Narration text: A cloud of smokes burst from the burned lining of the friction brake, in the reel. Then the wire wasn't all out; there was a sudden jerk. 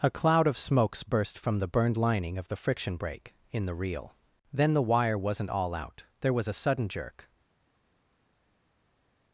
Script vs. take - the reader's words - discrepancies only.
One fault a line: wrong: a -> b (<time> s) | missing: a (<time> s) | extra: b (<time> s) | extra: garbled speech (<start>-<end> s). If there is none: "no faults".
no faults